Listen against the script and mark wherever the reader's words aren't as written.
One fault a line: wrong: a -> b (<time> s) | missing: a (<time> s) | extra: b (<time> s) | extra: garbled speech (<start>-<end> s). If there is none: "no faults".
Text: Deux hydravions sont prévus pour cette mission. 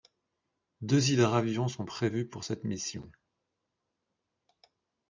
no faults